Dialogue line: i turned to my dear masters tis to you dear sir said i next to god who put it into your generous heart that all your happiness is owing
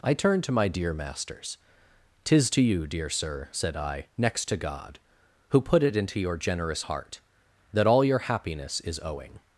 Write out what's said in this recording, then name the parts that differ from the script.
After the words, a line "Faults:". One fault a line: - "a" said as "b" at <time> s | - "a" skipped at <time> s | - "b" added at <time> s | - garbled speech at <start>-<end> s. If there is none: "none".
i turned to my dear masters tis to you dear sir said i next to god who put it into your generous heart that all your happiness is owing
Faults:
none